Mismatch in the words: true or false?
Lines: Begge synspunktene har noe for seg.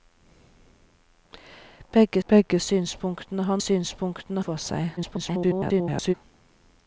true